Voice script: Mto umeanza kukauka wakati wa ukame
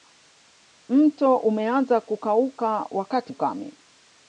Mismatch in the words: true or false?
true